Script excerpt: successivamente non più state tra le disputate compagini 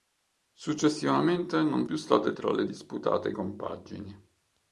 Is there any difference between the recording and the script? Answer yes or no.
no